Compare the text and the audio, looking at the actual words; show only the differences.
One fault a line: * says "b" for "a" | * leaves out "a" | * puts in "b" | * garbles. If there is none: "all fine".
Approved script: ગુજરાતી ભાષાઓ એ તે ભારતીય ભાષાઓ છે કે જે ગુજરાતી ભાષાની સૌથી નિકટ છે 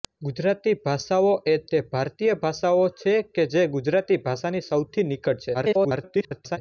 * garbles